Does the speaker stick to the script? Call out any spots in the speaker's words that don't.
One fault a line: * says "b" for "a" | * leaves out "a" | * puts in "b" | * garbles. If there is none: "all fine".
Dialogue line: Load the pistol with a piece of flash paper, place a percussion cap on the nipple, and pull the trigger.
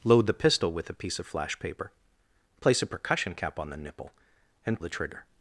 * leaves out "pull"